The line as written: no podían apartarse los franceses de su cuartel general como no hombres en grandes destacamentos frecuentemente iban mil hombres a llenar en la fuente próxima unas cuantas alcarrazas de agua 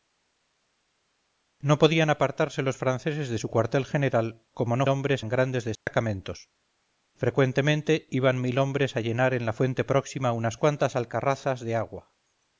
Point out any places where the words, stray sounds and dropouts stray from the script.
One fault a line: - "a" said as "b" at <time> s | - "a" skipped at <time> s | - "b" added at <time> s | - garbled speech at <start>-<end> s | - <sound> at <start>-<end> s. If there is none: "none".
- dropout at 5.8-5.9 s